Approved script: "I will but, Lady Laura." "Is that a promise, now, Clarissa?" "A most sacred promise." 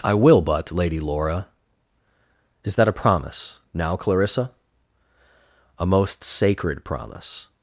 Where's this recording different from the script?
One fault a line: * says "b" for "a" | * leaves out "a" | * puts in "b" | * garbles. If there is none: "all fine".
all fine